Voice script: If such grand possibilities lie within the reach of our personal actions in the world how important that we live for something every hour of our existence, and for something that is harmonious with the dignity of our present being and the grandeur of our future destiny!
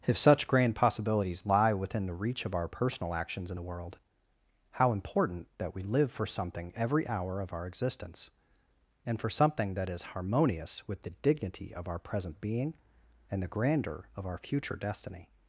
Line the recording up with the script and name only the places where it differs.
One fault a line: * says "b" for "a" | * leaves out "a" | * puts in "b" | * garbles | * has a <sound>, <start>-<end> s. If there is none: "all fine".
all fine